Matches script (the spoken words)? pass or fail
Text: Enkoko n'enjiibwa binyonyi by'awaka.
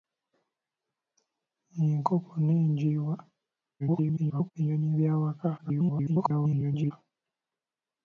fail